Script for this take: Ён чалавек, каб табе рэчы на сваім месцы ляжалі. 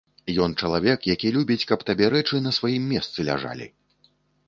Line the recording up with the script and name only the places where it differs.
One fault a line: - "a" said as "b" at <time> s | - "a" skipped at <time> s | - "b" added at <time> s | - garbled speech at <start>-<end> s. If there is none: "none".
- "які любіць" added at 1.1 s